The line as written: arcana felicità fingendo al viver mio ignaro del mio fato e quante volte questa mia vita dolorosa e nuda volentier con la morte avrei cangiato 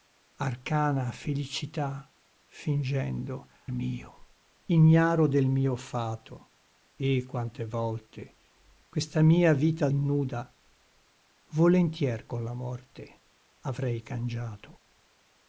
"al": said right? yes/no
no